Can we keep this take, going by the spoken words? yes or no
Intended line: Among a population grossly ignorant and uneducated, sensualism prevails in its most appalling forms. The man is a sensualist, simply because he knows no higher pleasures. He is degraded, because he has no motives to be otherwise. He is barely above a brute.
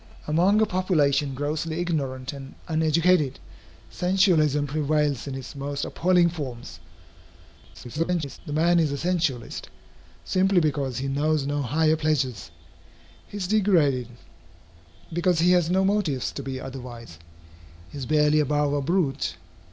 no